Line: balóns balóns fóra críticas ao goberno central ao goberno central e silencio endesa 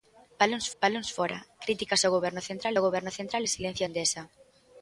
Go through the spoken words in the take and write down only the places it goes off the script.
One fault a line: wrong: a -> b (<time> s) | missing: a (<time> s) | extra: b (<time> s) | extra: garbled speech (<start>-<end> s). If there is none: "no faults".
no faults